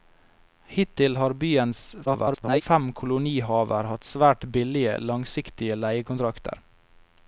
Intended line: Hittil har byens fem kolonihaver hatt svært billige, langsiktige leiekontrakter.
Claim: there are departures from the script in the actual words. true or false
true